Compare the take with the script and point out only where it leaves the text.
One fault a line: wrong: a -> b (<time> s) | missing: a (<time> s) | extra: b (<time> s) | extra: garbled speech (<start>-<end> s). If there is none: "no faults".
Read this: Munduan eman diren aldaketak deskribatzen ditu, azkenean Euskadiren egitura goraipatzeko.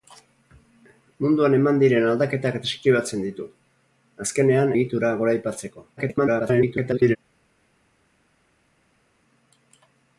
missing: Euskadiren (4.8 s)
extra: garbled speech (6.0-7.2 s)